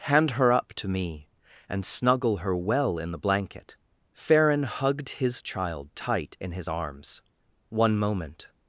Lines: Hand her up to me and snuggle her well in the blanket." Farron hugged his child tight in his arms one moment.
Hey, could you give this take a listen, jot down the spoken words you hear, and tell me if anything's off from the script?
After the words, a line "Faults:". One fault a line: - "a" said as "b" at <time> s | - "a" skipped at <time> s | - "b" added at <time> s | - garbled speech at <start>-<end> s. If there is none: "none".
Hand her up to me and snuggle her well in the blanket." Farron hugged his child tight in his arms one moment.
Faults:
none